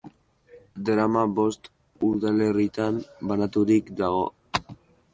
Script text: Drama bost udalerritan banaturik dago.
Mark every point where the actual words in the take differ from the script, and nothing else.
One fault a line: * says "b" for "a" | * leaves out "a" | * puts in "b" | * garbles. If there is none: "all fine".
all fine